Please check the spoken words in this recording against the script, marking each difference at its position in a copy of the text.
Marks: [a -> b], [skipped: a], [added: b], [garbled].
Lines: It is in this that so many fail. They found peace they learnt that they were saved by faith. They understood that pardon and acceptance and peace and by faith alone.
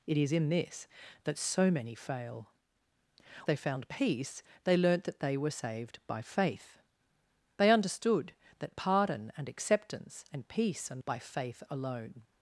It is in this that so many fail. They found peace they learnt that they were saved by faith. They understood that pardon and acceptance and peace and by faith alone.